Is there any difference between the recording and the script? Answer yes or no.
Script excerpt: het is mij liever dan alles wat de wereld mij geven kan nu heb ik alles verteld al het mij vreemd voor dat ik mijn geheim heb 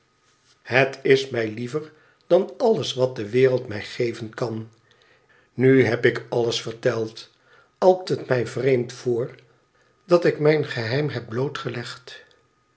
no